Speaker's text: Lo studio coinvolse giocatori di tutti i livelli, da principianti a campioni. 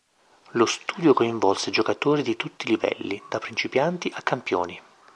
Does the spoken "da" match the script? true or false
true